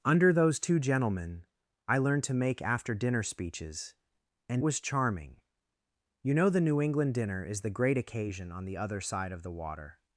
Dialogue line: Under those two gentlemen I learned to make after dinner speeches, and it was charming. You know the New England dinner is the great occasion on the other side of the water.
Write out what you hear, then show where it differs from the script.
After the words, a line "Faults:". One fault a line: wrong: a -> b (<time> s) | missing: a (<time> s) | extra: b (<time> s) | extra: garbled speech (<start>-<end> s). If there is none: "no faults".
Under those two gentlemen I learned to make after dinner speeches, and was charming. You know the New England dinner is the great occasion on the other side of the water.
Faults:
missing: it (4.6 s)